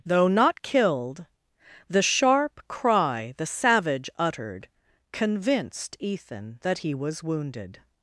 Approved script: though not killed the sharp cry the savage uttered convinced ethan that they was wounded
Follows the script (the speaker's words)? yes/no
no